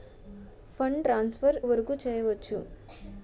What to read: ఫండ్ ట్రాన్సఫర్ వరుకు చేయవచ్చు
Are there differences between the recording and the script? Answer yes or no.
no